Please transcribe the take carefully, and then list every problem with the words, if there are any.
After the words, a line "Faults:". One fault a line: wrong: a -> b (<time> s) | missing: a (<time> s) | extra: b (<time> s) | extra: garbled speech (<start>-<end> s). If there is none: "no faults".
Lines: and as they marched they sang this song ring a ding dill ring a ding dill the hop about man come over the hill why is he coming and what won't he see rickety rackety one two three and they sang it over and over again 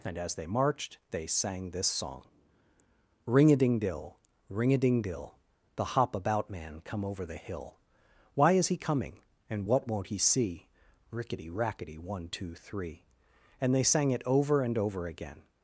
and as they marched they sang this song ring a ding dill ring a ding dill the hop about man come over the hill why is he coming and what won't he see rickety rackety one two three and they sang it over and over again
Faults:
no faults